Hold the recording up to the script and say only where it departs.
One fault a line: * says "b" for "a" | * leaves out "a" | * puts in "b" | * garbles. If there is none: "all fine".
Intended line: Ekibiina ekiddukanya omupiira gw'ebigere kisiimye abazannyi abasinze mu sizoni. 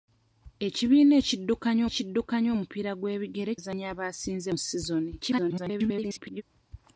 * puts in "ekiddukanya"
* leaves out "kisiimye"
* garbles